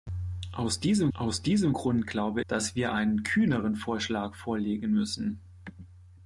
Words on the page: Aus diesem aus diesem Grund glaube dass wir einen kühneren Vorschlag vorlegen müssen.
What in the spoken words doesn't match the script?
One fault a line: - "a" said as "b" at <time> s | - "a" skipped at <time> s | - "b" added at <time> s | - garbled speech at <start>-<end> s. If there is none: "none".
none